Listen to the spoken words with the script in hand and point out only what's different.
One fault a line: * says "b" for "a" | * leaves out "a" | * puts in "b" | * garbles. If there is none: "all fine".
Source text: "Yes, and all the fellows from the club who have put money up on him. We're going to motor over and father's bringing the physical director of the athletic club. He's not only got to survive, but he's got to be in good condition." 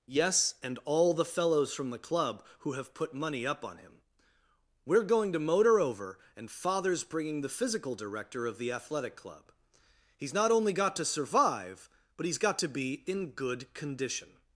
all fine